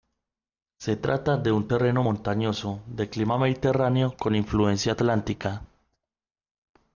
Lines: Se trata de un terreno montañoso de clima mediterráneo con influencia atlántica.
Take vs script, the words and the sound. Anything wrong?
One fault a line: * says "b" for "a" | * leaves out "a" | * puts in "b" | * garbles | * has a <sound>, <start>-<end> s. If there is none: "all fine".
all fine